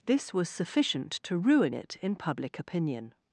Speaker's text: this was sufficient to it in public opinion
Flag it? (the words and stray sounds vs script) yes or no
yes